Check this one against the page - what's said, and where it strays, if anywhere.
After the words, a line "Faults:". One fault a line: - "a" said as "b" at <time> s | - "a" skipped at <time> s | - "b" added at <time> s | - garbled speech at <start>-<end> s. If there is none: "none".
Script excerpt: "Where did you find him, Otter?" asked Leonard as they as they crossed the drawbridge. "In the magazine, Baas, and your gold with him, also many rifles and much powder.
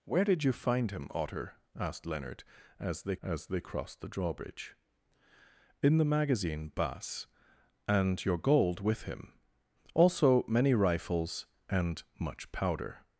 "Where did you find him, Otter?" asked Leonard as they as they crossed the drawbridge. "In the magazine, Baas, and your gold with him, also many rifles and much powder.
Faults:
none